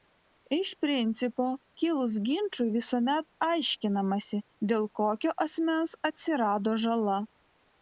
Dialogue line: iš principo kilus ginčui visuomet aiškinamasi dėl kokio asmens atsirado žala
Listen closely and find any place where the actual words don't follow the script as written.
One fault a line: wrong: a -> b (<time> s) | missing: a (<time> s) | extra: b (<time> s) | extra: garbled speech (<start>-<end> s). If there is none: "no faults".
no faults